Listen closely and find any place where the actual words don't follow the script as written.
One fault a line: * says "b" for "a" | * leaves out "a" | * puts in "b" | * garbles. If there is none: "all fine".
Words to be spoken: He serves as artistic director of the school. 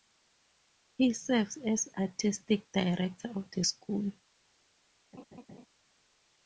all fine